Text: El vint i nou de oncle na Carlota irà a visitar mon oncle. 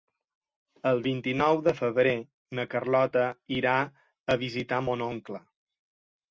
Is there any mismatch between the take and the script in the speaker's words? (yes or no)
yes